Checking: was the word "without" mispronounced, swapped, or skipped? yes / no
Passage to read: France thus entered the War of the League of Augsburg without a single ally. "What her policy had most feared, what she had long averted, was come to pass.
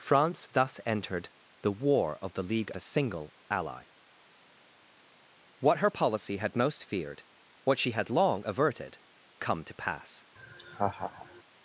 yes